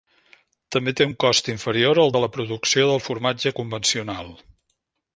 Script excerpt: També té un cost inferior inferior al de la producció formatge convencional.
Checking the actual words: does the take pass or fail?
fail